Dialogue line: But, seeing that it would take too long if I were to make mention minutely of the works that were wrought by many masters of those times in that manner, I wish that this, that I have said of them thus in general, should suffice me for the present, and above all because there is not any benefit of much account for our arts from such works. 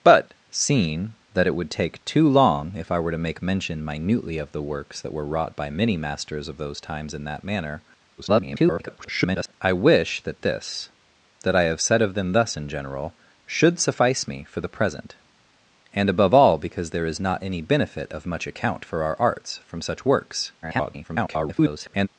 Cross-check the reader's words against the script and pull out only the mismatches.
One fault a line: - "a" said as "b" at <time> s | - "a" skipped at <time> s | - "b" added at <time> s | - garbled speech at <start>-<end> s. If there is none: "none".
- garbled speech at 8.2-9.5 s
- garbled speech at 20.6-22.1 s